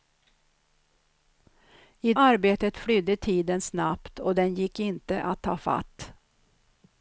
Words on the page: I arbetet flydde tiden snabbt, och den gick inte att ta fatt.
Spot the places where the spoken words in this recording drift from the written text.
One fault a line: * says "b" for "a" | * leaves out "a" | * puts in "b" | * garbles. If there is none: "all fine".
all fine